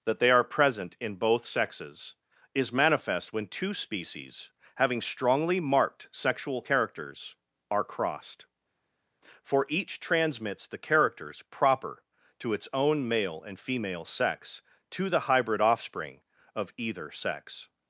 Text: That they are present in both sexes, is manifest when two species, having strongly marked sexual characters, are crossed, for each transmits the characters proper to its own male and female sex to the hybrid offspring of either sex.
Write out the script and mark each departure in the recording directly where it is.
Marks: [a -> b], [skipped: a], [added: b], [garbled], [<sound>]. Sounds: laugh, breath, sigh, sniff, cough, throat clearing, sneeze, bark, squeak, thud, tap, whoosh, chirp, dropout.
That they are present in both sexes, is manifest when two species, having strongly marked sexual characters, are crossed, for each transmits the characters proper to its own male and female sex to the hybrid offspring of either sex.